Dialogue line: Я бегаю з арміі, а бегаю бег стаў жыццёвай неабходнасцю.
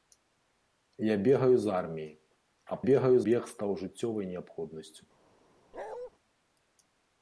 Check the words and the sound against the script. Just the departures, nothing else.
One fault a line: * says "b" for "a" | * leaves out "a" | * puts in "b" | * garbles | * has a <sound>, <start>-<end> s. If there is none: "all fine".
* has a bark, 5.7-6.1 s